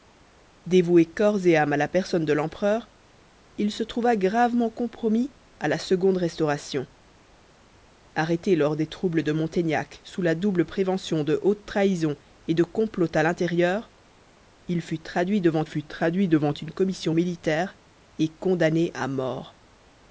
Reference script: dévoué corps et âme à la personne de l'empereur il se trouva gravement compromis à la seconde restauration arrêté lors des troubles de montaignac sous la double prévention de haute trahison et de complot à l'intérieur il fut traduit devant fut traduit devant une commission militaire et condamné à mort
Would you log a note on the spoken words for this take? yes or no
no